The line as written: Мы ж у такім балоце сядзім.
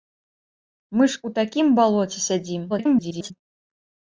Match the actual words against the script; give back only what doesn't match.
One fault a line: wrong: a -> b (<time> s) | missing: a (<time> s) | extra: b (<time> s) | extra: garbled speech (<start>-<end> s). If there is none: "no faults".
extra: garbled speech (2.7-3.3 s)